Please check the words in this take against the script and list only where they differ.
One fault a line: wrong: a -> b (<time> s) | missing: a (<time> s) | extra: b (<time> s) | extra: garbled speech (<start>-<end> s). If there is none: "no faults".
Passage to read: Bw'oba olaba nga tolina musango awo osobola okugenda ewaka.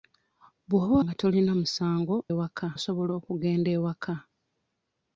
missing: olaba (0.9 s)
wrong: awo -> ewaka (2.3 s)